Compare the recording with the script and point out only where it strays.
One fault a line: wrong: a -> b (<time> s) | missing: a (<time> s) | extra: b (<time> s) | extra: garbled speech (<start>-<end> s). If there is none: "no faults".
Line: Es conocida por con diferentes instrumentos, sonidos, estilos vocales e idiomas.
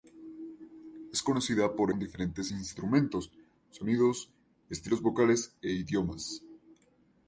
no faults